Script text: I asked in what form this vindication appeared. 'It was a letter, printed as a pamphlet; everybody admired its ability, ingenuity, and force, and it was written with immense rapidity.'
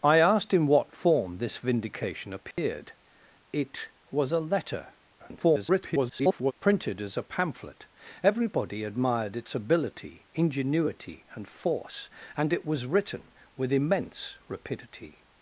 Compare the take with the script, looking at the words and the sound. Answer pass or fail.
fail